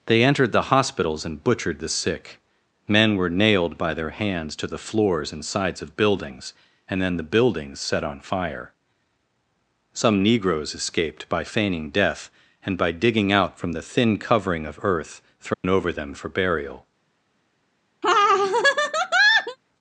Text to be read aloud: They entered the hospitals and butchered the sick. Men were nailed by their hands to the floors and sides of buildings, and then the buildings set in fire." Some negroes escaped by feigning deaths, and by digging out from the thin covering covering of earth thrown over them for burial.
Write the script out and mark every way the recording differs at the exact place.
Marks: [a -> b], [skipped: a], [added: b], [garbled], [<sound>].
They entered the hospitals and butchered the sick. Men were nailed by their hands to the floors and sides of buildings, and then the buildings set [in -> on] fire." Some negroes escaped by feigning [deaths, -> death] and by digging out from the thin covering [skipped: covering] of earth thrown [dropout] over them for burial. [laugh]